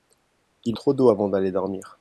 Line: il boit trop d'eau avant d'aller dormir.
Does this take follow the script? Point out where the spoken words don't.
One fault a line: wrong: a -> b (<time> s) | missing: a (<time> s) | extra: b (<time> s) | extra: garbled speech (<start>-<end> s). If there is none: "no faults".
missing: boit (0.8 s)